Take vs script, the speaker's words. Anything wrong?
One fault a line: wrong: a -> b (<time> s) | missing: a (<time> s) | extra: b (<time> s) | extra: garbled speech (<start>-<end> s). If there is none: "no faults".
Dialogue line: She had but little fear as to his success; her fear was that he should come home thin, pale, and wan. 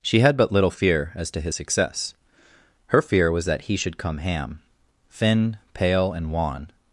wrong: home -> ham (4.2 s)